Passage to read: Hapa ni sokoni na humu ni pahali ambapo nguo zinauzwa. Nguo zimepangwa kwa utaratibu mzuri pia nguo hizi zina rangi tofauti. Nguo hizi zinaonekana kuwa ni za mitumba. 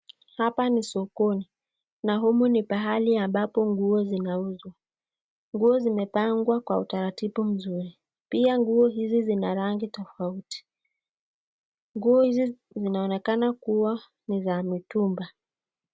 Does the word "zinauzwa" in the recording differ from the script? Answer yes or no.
no